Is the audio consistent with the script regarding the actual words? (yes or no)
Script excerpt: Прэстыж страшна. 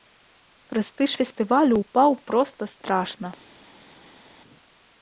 no